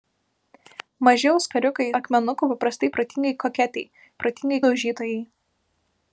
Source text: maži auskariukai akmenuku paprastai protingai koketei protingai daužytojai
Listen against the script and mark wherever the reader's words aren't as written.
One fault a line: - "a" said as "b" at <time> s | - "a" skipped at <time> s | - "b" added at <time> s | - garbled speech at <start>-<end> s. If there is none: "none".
none